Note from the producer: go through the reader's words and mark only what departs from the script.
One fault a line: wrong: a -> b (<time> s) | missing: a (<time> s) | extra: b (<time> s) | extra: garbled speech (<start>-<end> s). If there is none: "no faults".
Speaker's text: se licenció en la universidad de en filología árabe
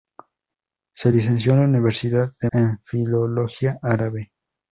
no faults